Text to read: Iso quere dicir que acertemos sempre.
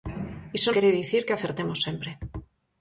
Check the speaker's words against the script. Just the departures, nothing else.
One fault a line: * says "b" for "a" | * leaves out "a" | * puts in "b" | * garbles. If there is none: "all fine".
all fine